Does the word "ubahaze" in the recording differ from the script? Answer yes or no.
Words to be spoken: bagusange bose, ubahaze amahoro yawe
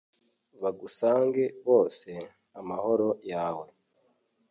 yes